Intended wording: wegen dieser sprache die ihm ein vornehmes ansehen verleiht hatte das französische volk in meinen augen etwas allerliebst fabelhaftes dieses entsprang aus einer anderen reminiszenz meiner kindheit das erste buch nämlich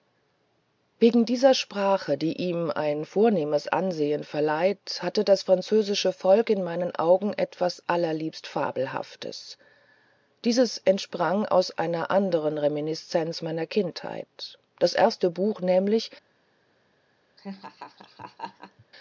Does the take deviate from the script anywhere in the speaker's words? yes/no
no